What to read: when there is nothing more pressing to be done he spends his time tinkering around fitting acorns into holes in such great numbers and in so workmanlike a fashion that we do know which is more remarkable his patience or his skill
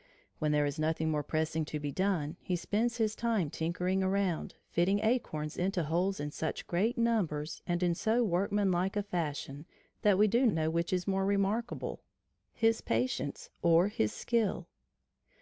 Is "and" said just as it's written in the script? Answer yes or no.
yes